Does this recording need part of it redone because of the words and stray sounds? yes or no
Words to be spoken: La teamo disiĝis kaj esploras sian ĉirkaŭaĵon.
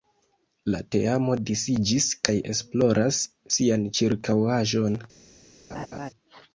yes